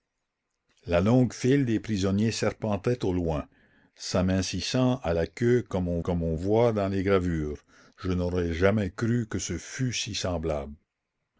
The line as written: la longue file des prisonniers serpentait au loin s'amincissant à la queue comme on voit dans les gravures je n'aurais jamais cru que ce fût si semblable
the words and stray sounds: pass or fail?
fail